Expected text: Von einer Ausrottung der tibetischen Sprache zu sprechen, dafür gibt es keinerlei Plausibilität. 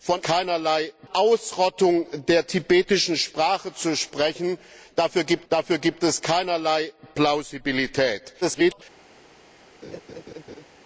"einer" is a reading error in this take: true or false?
true